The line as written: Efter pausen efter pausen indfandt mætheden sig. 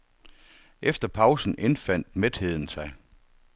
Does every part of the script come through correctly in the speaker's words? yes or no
no